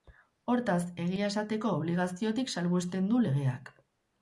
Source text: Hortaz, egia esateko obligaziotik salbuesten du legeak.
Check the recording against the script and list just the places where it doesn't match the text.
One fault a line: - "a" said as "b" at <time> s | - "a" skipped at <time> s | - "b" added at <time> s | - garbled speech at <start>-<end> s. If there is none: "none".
none